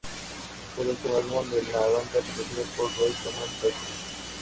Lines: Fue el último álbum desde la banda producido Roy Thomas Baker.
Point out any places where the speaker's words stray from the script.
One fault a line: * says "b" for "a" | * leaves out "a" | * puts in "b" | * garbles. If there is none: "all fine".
* says "de" for "desde"
* puts in "por"